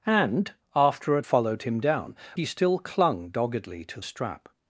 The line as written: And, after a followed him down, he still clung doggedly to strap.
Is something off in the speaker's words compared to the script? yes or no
no